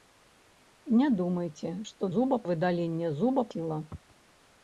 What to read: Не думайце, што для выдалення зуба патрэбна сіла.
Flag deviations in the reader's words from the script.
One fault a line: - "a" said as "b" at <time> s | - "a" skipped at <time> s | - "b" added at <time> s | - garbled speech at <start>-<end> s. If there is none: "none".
- "для" said as "зуба" at 2.2 s
- "патрэбна" skipped at 3.5 s